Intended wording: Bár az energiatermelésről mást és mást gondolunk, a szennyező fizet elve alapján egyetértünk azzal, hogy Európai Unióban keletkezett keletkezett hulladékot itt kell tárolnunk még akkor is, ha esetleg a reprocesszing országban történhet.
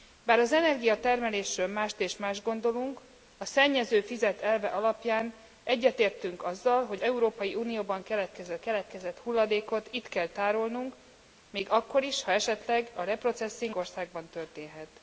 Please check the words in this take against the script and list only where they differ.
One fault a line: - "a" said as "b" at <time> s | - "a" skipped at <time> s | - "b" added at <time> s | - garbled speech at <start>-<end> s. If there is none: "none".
none